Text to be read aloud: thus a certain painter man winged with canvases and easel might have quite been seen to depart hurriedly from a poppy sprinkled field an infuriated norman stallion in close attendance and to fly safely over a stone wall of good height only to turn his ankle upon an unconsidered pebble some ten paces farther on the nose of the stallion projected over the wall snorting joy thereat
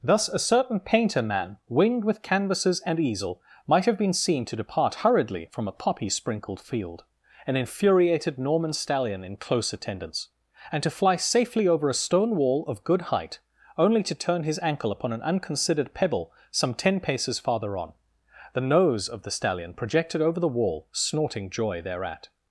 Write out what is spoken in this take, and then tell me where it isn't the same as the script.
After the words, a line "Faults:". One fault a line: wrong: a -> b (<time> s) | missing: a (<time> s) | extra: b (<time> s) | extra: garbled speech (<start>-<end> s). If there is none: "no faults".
thus a certain painter man winged with canvases and easel might have been seen to depart hurriedly from a poppy sprinkled field an infuriated norman stallion in close attendance and to fly safely over a stone wall of good height only to turn his ankle upon an unconsidered pebble some ten paces farther on the nose of the stallion projected over the wall snorting joy thereat
Faults:
missing: quite (4.0 s)